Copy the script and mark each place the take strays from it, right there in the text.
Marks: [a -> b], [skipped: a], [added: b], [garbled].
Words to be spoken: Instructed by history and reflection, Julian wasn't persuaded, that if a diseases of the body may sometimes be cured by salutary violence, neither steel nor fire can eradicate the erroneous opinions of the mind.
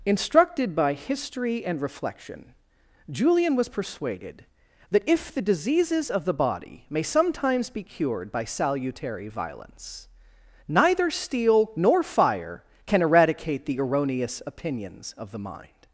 Instructed by history and reflection, Julian [wasn't -> was] persuaded, that if [a -> the] diseases of the body may sometimes be cured by salutary violence, neither steel nor fire can eradicate the erroneous opinions of the mind.